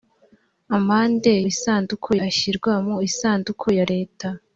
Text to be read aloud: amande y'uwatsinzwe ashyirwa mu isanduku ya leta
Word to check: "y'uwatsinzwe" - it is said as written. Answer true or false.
false